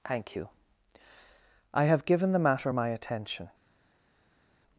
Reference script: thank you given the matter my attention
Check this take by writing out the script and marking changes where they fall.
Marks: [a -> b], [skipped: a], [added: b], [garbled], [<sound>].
thank you [added: i have] given the matter my attention